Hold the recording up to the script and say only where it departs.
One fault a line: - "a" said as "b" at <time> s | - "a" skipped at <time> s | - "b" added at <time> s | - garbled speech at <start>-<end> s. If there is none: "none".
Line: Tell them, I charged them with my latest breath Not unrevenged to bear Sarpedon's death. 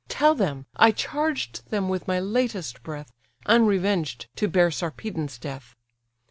- "Not" skipped at 3.1 s